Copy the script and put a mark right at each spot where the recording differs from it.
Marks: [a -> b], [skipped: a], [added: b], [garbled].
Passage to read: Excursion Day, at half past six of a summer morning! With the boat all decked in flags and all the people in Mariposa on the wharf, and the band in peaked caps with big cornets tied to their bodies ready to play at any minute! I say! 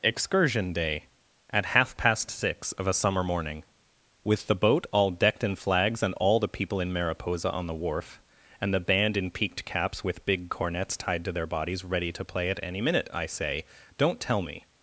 Excursion Day, at half past six of a summer morning! With the boat all decked in flags and all the people in Mariposa on the wharf, and the band in peaked caps with big cornets tied to their bodies ready to play at any minute! I say! [added: Don't tell me]